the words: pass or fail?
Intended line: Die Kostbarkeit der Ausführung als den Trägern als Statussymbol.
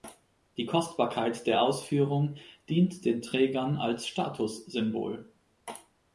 fail